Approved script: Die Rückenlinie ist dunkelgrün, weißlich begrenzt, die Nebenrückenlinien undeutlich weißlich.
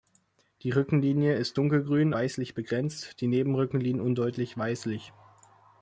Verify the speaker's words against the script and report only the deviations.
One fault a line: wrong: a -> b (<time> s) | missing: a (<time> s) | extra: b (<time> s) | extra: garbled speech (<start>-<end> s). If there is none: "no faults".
no faults